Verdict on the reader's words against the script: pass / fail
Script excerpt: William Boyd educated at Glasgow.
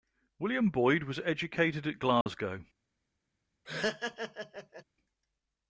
fail